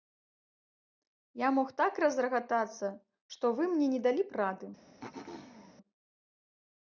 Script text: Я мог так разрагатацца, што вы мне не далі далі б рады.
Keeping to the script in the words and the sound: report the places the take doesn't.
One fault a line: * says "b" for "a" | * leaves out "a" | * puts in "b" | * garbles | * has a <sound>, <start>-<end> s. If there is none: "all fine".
* leaves out "далі"
* has a throat clearing, 5.0-5.8 s